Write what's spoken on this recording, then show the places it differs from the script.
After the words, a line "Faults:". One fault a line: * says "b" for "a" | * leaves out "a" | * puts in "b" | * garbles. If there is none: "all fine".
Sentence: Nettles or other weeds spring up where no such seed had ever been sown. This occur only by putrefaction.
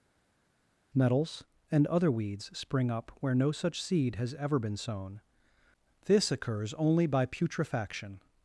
Nettles and other weeds spring up where no such seed has ever been sown. This occurs only by putrefaction.
Faults:
* says "and" for "or"
* says "has" for "had"
* says "occurs" for "occur"